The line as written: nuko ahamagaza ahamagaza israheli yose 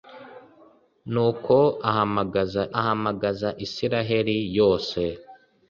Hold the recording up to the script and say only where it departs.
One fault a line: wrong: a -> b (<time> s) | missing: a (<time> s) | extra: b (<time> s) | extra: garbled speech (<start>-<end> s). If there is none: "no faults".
no faults